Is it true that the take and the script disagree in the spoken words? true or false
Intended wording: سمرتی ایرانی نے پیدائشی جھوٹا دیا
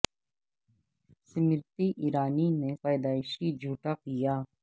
false